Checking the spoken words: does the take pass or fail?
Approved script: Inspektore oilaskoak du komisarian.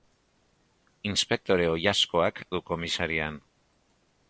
pass